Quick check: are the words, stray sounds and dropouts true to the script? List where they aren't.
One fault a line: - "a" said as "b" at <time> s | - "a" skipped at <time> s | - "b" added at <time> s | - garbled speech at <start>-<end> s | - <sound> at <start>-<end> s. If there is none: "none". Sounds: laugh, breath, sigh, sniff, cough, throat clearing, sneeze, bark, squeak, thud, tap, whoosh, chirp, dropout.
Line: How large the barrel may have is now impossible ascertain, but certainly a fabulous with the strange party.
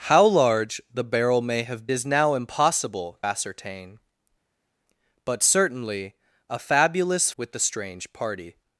none